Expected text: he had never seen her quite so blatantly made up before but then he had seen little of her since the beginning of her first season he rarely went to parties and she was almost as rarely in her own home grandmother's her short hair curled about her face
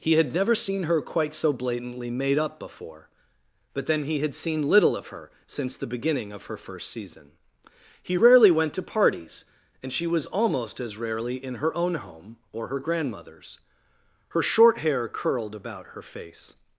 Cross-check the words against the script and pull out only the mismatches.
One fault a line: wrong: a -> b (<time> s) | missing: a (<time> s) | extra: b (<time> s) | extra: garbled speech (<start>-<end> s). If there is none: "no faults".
extra: or her (12.5 s)